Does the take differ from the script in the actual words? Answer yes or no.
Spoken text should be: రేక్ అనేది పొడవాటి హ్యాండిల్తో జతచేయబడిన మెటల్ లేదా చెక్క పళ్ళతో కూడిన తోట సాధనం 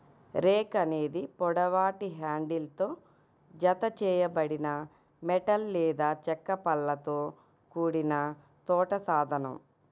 no